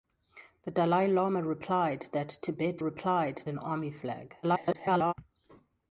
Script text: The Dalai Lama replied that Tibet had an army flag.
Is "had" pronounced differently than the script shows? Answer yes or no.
yes